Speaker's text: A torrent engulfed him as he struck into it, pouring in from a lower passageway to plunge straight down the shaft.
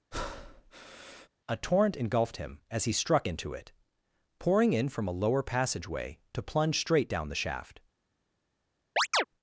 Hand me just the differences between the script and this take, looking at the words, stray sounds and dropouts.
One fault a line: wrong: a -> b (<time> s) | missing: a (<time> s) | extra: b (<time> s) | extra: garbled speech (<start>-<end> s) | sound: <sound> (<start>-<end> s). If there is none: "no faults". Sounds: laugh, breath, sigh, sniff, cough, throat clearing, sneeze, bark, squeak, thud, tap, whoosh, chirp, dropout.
sound: breath (0.1-1.3 s)
sound: chirp (9.0-9.2 s)